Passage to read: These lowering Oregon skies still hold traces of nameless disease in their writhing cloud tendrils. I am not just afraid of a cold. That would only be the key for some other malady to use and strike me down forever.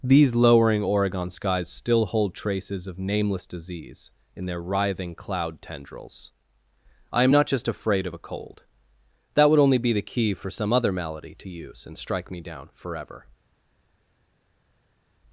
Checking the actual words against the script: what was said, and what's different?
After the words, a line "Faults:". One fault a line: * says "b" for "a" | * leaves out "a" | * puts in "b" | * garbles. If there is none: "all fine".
These lowering Oregon skies still hold traces of nameless disease in their writhing cloud tendrils. I am not just afraid of a cold. That would only be the key for some other malady to use and strike me down forever.
Faults:
all fine